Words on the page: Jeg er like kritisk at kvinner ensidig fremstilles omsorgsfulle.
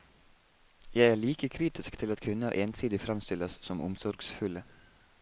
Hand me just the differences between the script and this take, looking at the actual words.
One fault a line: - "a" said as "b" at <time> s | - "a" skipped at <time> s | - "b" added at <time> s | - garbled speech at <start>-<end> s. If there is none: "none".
- "til" added at 2.0 s
- "som" added at 3.6 s